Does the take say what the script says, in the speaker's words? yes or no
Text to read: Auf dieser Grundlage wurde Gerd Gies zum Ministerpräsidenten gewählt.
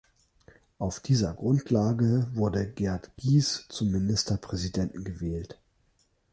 yes